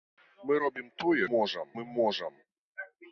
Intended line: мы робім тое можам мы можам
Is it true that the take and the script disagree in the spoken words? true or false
false